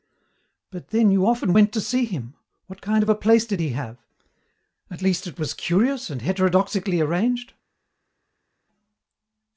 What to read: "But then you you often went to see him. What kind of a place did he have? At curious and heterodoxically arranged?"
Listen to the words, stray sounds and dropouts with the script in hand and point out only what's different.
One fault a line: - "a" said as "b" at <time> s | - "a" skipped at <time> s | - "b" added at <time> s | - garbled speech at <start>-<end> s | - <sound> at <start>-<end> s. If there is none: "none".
- "you" skipped at 1.3 s
- "least it was" added at 5.0 s